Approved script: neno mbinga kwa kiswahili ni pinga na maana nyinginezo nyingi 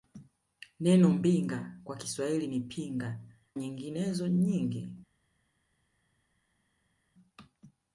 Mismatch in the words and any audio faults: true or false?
true